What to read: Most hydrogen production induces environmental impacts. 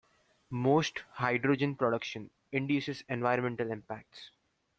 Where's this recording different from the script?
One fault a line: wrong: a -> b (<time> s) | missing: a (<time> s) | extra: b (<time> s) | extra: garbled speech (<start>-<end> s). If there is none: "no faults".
no faults